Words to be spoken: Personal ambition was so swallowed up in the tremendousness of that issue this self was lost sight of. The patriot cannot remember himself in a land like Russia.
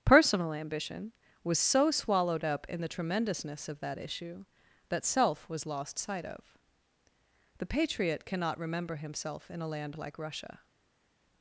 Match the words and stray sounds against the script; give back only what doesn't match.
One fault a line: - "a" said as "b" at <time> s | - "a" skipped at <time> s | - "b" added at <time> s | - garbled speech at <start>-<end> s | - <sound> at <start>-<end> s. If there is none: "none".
- "this" said as "that" at 4.9 s